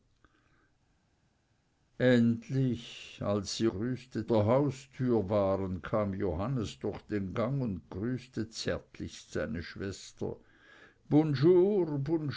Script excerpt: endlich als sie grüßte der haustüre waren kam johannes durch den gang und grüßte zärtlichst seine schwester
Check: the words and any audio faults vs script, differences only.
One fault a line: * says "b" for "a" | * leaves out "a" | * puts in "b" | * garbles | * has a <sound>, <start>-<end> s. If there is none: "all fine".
all fine